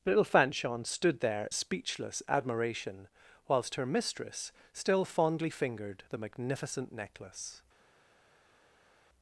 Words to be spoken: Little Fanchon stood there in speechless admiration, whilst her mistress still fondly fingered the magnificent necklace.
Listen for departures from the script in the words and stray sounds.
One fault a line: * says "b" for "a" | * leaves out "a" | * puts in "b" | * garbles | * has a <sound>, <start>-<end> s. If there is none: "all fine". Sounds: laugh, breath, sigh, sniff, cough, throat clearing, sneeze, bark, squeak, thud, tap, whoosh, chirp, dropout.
* leaves out "in"